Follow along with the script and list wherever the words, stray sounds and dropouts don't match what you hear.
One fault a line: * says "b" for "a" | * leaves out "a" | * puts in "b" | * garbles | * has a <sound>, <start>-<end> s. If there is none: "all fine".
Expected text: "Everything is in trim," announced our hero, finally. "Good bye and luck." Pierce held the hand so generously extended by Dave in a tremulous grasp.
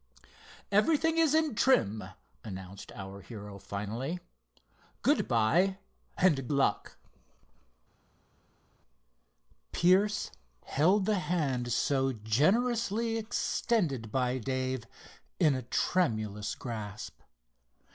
all fine